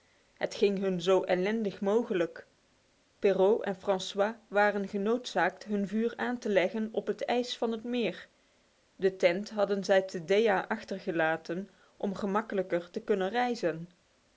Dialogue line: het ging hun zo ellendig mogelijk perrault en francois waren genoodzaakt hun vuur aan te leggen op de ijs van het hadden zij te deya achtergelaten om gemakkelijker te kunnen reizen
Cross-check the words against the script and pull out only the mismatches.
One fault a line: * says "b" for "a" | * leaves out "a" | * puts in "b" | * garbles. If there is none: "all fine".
* says "het" for "de"
* puts in "meer de tent"